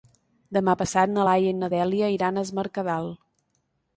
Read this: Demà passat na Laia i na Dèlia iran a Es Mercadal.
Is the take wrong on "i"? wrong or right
right